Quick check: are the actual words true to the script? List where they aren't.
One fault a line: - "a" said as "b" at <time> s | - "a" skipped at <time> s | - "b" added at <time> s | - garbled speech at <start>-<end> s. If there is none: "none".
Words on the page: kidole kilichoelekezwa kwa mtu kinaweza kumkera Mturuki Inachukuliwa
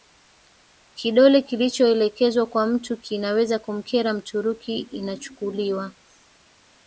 none